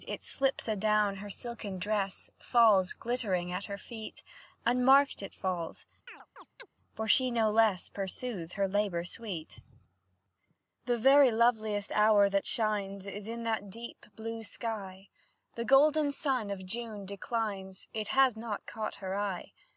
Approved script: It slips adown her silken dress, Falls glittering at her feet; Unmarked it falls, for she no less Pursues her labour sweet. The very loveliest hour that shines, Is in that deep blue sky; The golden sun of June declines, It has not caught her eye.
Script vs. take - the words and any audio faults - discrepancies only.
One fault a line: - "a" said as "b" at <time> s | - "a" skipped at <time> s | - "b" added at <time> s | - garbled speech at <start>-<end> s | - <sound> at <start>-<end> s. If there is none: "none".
- chirp at 6.1-6.7 s